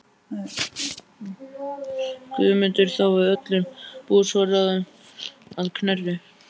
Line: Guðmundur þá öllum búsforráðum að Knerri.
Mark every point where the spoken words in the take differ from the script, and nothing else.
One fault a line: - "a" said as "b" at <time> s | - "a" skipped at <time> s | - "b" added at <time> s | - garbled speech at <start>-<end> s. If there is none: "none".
- "við" added at 3.2 s